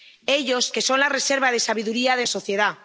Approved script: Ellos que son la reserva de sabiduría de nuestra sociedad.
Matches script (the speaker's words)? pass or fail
fail